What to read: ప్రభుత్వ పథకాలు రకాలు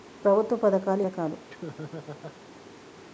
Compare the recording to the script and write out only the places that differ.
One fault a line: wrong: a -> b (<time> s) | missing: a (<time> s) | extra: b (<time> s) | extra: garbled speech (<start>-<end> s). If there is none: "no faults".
no faults